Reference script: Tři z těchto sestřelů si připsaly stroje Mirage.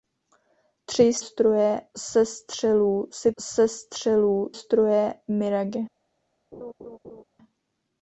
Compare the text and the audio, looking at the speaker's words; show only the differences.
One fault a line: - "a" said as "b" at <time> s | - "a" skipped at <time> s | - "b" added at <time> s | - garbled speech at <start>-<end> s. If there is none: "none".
- "těchto" said as "stroje" at 1.2 s
- "připsaly" said as "sestřelů" at 3.4 s